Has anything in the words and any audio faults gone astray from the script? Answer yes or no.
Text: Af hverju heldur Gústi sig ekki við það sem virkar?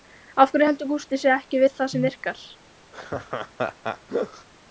yes